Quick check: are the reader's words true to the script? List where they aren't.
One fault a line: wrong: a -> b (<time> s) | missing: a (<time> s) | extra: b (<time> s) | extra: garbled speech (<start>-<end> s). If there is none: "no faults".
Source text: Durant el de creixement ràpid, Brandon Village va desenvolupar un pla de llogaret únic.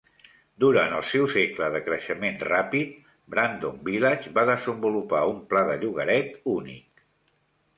extra: seu segle (1.1 s)